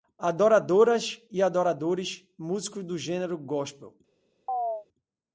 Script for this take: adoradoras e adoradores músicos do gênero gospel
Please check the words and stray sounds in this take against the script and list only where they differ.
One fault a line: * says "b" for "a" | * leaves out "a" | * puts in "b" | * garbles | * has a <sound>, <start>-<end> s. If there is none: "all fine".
* has a chirp, 4.5-4.9 s